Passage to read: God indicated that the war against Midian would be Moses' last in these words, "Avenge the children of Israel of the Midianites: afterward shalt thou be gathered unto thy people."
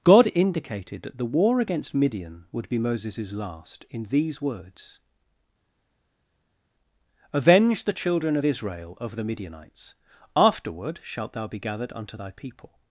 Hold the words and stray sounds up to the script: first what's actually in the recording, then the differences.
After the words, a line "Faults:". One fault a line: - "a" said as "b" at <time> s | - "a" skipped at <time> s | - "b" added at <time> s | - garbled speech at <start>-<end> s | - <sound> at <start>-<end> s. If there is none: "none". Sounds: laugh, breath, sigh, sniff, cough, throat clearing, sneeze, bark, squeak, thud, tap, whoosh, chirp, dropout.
God indicated that the war against Midian would be Moses' last in these words, "Avenge the children of Israel of the Midianites: afterward shalt thou be gathered unto thy people."
Faults:
none